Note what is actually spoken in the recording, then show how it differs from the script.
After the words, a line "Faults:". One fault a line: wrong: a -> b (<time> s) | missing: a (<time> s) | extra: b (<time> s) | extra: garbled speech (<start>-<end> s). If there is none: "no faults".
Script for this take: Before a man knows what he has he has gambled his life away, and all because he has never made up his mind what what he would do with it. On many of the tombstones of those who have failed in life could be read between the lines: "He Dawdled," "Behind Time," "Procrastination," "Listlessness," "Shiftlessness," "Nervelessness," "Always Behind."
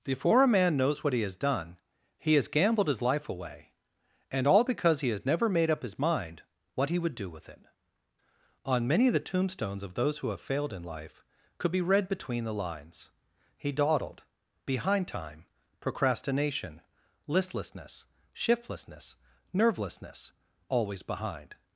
Before a man knows what he has done, he has gambled his life away, and all because he has never made up his mind what he would do with it. On many of the tombstones of those who have failed in life could be read between the lines: "He Dawdled," "Behind Time," "Procrastination," "Listlessness," "Shiftlessness," "Nervelessness," "Always Behind."
Faults:
extra: done (1.4 s)
missing: what (6.9 s)